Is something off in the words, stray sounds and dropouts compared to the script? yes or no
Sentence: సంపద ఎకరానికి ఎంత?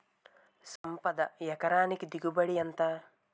yes